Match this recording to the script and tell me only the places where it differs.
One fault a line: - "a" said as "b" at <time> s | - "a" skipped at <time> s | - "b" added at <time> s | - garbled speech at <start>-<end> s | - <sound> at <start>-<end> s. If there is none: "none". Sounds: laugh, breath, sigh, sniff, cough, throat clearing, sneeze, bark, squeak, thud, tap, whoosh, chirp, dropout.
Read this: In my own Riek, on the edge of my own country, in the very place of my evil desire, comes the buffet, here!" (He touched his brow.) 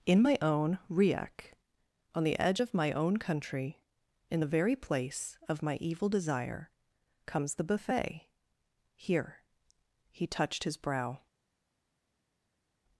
none